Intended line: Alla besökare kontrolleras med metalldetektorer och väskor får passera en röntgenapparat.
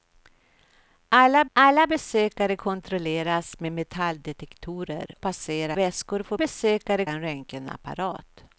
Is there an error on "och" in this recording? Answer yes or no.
yes